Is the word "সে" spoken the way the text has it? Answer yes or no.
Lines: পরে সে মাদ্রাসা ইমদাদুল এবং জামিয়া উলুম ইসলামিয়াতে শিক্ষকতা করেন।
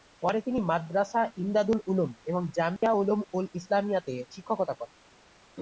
no